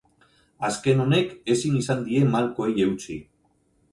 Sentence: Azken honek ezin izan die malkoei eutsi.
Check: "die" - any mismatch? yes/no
no